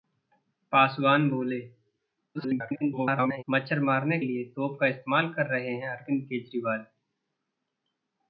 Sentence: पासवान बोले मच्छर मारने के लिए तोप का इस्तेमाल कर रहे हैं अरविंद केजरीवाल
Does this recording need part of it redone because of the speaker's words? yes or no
yes